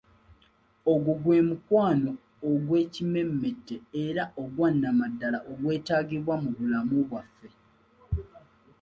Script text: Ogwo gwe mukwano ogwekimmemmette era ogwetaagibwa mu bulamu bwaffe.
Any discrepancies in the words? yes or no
yes